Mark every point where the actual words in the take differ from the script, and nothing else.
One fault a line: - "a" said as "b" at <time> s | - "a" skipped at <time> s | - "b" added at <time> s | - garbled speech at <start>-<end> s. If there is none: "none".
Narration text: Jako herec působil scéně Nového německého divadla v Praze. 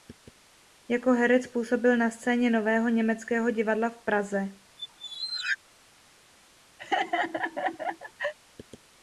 - "na" added at 2.0 s